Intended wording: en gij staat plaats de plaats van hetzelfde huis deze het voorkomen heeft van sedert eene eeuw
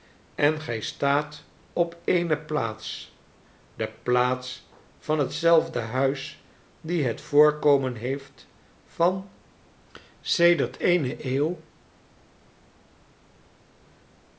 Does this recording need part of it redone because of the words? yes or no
yes